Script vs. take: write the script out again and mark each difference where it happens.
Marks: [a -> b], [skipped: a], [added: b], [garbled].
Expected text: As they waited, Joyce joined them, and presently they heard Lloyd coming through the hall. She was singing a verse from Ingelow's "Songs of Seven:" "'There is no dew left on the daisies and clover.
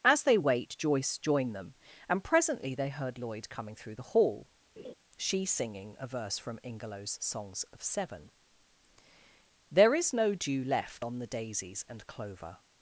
As they [waited, -> wait] Joyce joined them, and presently they heard Lloyd coming through the hall. She [skipped: was] singing a verse from Ingelow's "Songs of Seven:" "'There is no dew left on the daisies and clover.